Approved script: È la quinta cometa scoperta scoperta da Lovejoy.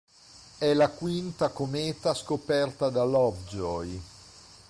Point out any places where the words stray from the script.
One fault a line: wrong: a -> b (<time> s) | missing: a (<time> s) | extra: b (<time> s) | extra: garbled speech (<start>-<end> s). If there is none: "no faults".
missing: scoperta (2.9 s)